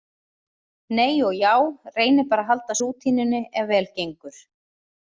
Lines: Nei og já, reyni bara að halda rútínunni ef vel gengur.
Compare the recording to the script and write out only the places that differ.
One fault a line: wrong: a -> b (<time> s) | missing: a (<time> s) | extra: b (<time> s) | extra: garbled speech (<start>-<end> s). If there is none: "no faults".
no faults